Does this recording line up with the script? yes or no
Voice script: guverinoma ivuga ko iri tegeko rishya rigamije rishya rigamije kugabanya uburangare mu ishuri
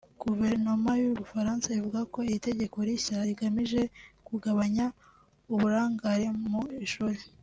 no